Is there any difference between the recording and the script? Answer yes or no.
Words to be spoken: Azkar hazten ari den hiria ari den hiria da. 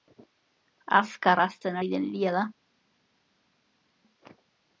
yes